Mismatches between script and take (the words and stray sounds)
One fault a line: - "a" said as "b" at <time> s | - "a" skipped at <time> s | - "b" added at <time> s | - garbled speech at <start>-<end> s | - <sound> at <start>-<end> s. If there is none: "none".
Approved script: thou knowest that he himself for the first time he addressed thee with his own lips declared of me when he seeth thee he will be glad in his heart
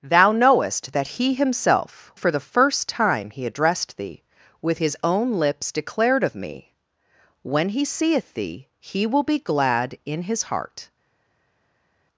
none